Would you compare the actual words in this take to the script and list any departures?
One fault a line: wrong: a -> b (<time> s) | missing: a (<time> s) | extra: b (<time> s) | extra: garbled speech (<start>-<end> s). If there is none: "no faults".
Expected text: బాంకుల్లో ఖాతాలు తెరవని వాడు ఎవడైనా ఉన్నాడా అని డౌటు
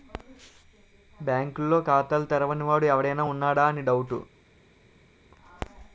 no faults